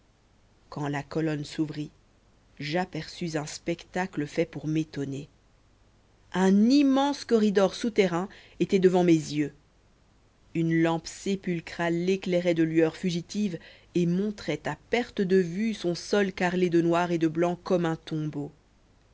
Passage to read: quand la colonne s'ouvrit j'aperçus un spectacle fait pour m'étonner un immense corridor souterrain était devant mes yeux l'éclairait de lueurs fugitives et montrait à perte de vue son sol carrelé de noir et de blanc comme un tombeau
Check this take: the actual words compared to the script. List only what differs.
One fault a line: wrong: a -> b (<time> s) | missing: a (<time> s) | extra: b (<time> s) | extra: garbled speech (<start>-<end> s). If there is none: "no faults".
extra: une lampe sépulcrale (10.6 s)